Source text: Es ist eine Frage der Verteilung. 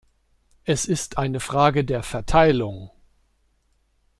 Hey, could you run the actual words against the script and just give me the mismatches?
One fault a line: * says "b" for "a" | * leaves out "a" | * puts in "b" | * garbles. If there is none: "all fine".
all fine